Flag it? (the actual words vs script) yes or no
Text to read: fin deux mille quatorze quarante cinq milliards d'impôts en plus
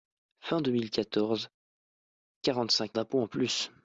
yes